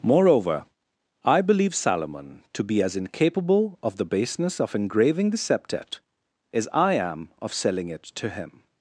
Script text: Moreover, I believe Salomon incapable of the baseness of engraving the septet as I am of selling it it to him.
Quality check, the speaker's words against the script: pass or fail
fail